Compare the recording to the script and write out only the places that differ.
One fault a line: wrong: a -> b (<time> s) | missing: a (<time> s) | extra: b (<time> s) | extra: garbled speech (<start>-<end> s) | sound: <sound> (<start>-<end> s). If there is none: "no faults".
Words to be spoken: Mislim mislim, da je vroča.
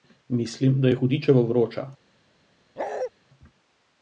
missing: mislim (0.8 s)
extra: hudičevo (0.9 s)
sound: bark (2.8-3.1 s)